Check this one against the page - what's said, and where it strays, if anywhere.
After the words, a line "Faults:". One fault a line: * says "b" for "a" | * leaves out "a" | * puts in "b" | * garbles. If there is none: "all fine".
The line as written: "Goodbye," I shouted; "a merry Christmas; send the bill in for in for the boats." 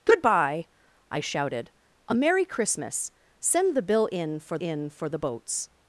"Goodbye," I shouted; "a merry Christmas; send the bill in for in for the boats."
Faults:
all fine